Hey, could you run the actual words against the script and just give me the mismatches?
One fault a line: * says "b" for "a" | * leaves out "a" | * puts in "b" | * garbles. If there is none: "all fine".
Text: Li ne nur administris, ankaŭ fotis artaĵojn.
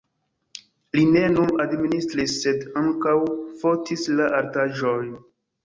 * puts in "sed"
* puts in "la"